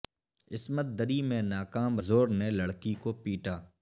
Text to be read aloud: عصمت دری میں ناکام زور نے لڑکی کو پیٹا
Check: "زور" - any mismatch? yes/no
no